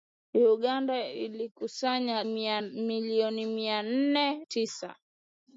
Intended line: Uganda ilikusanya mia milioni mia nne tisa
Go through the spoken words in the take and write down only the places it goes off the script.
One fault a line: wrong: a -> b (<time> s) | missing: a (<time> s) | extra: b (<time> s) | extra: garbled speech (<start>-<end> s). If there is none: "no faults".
no faults